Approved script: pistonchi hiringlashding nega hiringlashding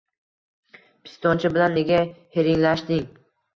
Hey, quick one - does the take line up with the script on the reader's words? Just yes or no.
no